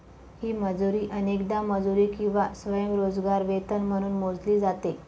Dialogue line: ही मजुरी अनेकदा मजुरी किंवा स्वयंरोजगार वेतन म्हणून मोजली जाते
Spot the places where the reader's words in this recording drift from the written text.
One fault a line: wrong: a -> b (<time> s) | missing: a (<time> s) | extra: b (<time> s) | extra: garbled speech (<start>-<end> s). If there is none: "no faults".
no faults